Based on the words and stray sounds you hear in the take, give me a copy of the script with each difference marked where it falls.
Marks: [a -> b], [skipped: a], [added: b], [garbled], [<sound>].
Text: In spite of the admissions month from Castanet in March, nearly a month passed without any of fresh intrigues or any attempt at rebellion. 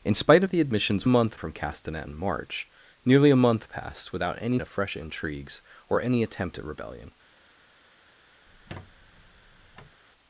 In spite of the admissions month from Castanet in March, nearly a month passed without any of fresh intrigues or any attempt at rebellion. [squeak]